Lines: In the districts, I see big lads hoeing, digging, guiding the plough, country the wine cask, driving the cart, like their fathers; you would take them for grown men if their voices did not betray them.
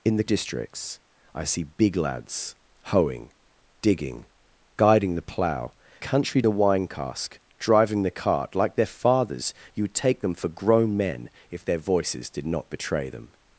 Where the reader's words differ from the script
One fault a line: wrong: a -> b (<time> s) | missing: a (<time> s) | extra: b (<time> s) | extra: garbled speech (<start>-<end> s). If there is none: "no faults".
no faults